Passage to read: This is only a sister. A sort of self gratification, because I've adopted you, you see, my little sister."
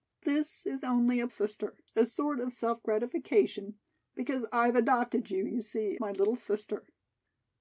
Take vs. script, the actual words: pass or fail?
pass